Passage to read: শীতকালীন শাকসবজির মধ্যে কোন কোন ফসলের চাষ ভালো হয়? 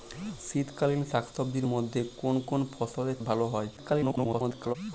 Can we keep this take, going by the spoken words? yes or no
no